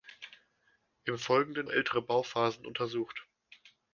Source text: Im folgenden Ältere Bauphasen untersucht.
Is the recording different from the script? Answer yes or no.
no